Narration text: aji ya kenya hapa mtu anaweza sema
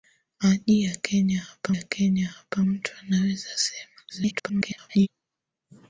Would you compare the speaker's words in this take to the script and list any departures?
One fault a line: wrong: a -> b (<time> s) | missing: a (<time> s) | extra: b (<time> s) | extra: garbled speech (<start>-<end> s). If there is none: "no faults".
extra: ya kenya hapa (1.7 s)
extra: garbled speech (4.1-5.1 s)